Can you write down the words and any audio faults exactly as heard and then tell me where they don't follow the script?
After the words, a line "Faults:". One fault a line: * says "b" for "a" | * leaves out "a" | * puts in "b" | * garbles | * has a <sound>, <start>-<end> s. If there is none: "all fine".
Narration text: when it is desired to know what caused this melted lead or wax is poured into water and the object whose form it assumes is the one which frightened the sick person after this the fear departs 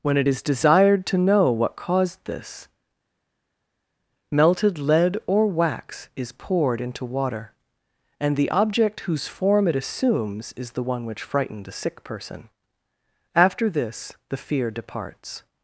when it is desired to know what caused this melted lead or wax is poured into water and the object whose form it assumes is the one which frightened a sick person after this the fear departs
Faults:
* says "a" for "the"